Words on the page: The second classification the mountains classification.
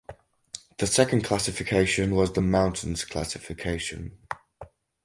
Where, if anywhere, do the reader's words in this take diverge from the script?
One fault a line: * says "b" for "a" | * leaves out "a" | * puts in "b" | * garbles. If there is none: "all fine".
* puts in "was"